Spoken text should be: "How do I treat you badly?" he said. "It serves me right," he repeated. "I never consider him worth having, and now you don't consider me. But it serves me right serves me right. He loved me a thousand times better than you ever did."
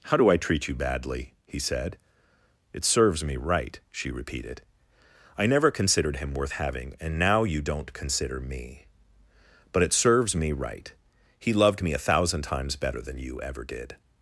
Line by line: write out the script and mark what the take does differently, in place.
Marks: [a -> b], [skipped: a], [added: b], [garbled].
"How do I treat you badly?" he said. "It serves me right," [he -> she] repeated. "I never [consider -> considered] him worth having, and now you don't consider me. But it serves me right [skipped: serves me right.] He loved me a thousand times better than you ever did."